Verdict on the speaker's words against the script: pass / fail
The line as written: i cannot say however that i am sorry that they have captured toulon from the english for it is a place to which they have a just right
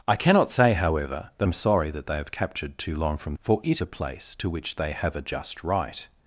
fail